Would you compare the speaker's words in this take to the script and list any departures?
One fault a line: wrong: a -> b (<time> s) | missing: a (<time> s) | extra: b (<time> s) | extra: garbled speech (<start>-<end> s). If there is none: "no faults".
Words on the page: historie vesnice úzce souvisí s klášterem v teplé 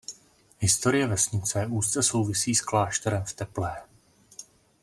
no faults